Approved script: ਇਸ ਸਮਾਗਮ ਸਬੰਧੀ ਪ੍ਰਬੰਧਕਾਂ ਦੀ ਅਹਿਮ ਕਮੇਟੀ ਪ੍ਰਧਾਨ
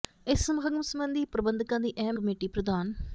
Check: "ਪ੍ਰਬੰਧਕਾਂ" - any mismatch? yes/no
no